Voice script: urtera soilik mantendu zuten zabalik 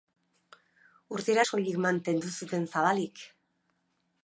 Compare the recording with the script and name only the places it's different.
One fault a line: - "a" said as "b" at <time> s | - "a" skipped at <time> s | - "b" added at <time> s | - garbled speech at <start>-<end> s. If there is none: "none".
none